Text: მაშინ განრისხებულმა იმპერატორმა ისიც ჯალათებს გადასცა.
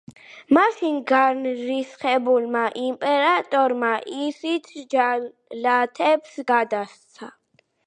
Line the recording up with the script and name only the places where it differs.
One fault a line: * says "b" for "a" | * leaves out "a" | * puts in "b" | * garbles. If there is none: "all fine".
all fine